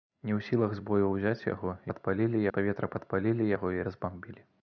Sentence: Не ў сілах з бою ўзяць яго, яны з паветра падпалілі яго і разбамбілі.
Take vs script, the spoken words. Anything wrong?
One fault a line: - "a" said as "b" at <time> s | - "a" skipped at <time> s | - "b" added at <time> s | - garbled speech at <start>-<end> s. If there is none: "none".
- "яны" said as "падпалілі" at 1.9 s